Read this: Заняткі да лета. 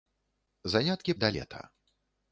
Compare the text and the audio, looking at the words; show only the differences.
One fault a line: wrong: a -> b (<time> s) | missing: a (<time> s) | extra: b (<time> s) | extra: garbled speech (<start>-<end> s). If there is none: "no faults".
no faults